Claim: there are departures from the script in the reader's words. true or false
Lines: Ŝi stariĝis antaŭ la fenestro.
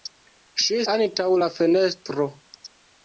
true